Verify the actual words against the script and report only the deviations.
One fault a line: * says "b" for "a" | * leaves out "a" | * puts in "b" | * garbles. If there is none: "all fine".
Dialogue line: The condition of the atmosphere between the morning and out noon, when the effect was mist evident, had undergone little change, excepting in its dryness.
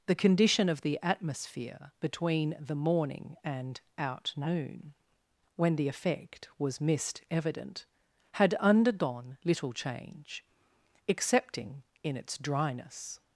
all fine